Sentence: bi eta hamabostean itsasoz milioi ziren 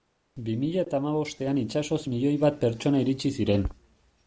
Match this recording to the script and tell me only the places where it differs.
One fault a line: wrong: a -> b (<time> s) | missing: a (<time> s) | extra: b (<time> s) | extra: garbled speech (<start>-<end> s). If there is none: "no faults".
extra: mila (0.6 s)
extra: bat pertsona iritsi (2.4 s)